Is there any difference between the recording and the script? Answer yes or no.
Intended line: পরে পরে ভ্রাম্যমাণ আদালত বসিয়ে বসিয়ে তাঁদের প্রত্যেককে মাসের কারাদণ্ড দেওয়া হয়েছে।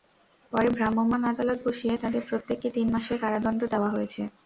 yes